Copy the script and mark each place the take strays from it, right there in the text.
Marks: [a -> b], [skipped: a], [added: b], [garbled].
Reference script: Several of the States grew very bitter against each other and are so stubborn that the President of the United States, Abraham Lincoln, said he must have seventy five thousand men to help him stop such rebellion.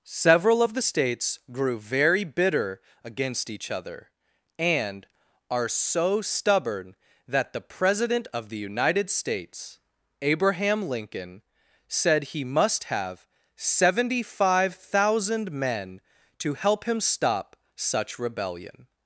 Several of the States grew very bitter against each other and are so stubborn that the President of the United States, Abraham Lincoln, said he must have seventy five thousand men to help him stop such rebellion.